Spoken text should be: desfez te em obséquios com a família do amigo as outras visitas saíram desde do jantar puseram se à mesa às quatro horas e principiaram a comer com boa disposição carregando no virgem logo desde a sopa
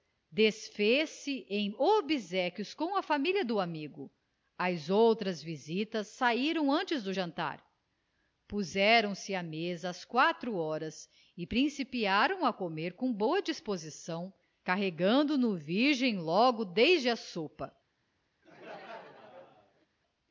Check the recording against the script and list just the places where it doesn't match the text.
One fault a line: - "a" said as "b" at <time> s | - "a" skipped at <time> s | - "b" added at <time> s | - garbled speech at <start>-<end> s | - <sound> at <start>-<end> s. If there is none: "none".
- "te" said as "se" at 1.1 s
- "desde" said as "antes" at 6.7 s
- laugh at 18.4-19.9 s